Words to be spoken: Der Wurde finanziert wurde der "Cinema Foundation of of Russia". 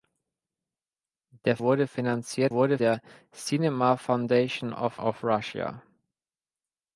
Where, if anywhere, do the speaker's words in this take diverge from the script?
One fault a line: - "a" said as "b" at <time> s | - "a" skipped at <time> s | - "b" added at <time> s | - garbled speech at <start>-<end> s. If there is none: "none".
none